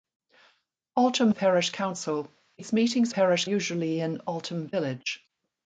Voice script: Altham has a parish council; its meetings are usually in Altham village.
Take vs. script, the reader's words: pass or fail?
fail